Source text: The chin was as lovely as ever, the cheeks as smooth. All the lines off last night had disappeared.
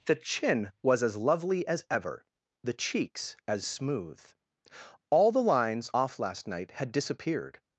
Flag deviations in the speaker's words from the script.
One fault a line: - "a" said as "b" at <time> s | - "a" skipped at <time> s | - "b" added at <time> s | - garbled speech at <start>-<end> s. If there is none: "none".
none